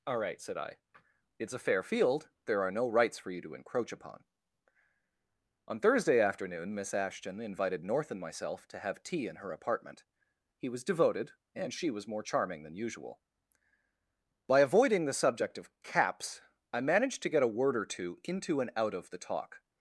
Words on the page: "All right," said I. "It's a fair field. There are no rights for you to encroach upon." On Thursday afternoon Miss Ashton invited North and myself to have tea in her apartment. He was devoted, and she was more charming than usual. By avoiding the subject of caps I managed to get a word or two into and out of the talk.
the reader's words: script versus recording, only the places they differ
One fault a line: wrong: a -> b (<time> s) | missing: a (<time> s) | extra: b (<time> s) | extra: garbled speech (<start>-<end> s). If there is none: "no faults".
no faults